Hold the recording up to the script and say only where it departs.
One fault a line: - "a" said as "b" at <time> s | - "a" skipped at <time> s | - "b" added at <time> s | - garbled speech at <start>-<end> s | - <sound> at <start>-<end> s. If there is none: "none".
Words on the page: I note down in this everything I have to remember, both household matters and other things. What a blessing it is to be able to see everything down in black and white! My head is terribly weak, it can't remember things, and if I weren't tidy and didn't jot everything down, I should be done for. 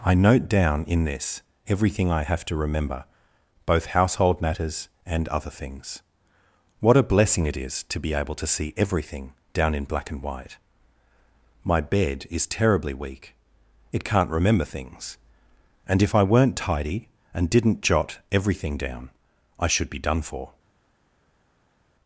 - "head" said as "bed" at 11.8 s